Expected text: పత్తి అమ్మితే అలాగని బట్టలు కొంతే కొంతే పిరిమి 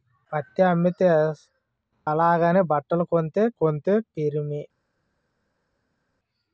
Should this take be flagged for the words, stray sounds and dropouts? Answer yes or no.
no